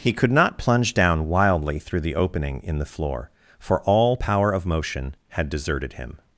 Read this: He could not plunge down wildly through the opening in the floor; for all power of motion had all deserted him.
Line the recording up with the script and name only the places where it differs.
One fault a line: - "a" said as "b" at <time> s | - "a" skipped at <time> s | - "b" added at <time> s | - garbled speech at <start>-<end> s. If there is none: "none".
- "all" skipped at 5.5 s